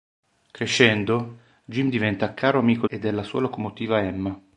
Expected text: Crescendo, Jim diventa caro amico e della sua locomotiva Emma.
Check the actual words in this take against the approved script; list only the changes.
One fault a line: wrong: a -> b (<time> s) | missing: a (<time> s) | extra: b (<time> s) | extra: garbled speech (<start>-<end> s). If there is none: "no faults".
no faults